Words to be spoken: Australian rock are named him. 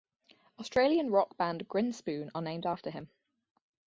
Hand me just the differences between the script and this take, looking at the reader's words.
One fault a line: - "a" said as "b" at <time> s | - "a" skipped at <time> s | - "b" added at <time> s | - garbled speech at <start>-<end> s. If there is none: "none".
- "band Grinspoon" added at 1.4 s
- "after" added at 2.7 s